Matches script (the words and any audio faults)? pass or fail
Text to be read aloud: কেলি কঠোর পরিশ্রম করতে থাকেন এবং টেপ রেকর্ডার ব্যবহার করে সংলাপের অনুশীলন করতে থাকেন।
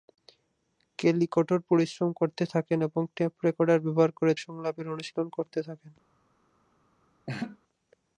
fail